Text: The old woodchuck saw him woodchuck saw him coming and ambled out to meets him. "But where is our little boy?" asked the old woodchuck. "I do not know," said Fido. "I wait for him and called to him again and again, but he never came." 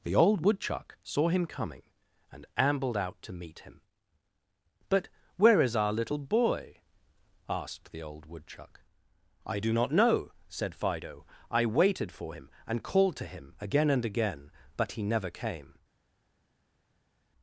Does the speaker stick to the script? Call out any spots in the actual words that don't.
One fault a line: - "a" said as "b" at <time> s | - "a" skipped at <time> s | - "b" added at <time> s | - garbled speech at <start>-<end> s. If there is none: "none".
- "woodchuck saw him" skipped at 1.4 s
- "meets" said as "meet" at 3.3 s
- "wait" said as "waited" at 11.6 s